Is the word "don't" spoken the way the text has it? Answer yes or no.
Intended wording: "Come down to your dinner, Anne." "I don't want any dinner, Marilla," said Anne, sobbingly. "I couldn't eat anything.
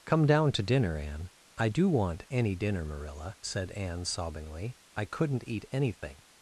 no